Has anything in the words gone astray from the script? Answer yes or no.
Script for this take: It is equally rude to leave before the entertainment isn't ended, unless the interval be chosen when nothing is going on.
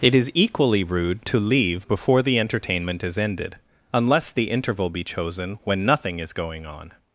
yes